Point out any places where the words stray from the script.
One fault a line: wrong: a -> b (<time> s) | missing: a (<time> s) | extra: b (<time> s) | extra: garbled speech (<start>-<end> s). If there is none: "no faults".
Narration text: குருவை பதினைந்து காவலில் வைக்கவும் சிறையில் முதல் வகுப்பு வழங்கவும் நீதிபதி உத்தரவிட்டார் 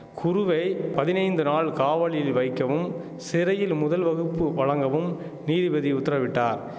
extra: நாள் (1.4 s)